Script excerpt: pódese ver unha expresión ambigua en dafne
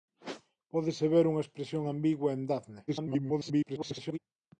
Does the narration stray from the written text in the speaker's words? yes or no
yes